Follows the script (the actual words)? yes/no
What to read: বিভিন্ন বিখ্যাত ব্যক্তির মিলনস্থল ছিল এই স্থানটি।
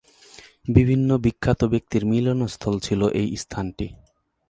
yes